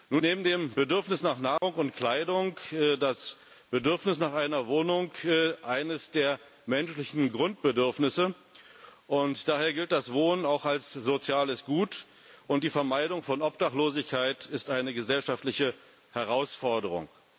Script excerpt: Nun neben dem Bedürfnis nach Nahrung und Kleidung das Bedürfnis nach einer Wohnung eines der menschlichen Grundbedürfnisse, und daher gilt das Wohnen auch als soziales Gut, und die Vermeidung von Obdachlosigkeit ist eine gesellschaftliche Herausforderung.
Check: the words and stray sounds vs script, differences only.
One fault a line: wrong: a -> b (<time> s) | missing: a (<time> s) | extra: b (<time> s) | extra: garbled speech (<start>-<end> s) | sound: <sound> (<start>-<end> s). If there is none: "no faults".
sound: dropout (1.6-1.6 s)